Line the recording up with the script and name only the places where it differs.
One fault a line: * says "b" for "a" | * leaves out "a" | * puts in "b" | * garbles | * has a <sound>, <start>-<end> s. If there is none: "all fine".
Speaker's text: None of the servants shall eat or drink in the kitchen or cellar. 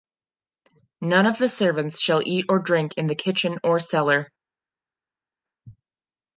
all fine